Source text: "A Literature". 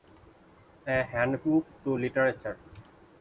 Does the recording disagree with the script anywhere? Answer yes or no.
yes